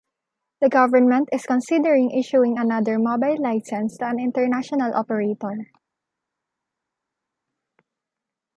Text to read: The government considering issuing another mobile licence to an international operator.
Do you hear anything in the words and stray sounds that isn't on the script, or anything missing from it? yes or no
yes